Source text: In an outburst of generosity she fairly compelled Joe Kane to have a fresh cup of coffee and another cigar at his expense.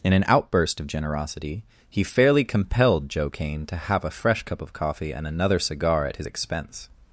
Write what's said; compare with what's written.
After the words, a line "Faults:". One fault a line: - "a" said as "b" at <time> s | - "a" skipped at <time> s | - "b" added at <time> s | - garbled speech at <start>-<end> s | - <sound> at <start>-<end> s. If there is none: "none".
In an outburst of generosity he fairly compelled Joe Kane to have a fresh cup of coffee and another cigar at his expense.
Faults:
- "she" said as "he" at 1.9 s